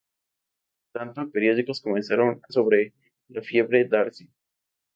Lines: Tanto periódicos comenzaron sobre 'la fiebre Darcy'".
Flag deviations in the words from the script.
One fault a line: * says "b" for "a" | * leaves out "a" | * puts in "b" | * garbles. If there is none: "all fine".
all fine